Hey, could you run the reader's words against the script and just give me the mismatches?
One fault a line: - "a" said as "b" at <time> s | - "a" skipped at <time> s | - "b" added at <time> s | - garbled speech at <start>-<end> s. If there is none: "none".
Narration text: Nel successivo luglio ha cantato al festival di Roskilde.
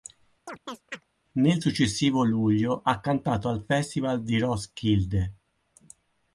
none